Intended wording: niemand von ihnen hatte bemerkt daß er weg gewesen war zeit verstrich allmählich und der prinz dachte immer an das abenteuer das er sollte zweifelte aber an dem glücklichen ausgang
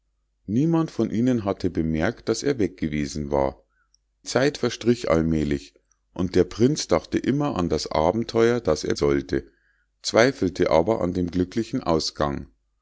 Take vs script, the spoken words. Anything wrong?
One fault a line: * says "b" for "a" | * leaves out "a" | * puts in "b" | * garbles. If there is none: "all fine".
all fine